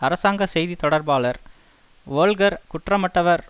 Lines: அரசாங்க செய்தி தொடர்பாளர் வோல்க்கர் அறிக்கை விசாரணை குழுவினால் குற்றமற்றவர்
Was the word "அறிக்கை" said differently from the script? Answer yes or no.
yes